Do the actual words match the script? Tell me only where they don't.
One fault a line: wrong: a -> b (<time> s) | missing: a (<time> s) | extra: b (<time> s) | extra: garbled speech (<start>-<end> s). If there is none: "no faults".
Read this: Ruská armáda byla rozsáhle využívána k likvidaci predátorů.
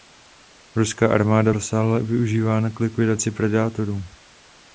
missing: byla (1.5 s)